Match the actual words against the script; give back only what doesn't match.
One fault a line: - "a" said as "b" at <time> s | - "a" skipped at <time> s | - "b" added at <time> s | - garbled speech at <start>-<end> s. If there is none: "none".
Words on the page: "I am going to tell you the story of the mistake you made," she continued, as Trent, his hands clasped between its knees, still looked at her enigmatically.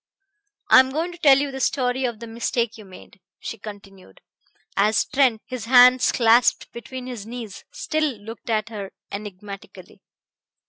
- "its" said as "his" at 7.1 s